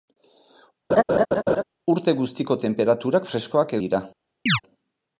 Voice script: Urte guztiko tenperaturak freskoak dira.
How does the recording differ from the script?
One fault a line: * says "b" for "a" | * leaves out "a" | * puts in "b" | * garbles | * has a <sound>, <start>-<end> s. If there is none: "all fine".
* has a laugh, 0.9-1.6 s
* has a chirp, 4.5-4.6 s